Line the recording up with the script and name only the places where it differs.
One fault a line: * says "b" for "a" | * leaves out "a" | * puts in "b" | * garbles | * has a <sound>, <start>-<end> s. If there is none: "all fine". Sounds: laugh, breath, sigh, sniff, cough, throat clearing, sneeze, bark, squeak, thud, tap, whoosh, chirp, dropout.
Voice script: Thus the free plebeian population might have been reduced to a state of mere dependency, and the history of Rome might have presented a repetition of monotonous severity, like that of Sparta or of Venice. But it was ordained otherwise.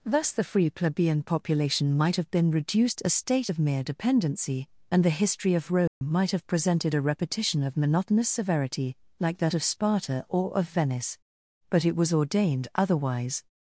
* leaves out "to"
* has a dropout, 5.9-6.0 s